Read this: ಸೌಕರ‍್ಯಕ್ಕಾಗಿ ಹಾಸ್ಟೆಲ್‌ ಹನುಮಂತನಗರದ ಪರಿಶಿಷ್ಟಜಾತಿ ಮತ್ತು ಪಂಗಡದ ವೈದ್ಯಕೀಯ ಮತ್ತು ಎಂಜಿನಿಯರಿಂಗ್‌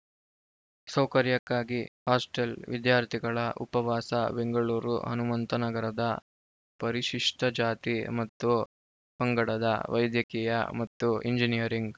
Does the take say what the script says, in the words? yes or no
no